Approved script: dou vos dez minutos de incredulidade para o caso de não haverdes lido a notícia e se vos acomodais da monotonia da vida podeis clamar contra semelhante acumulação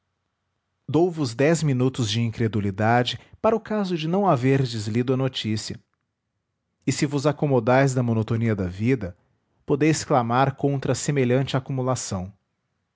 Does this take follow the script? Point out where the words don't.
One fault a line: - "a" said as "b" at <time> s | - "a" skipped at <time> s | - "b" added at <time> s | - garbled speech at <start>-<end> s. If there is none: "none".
none